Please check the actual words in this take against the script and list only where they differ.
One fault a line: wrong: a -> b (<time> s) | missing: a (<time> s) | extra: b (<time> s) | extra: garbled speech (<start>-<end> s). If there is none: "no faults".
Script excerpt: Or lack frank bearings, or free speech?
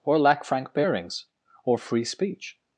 no faults